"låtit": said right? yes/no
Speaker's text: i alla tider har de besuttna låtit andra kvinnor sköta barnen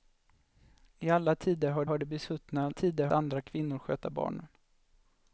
no